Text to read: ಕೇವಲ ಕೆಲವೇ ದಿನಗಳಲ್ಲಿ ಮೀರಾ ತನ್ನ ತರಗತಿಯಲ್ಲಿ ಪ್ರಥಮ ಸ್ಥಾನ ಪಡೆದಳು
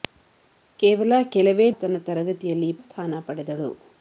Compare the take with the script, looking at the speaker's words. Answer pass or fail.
fail